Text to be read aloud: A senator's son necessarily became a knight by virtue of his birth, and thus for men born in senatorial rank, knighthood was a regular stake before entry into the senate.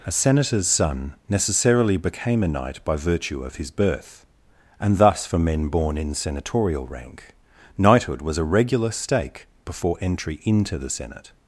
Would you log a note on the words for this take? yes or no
no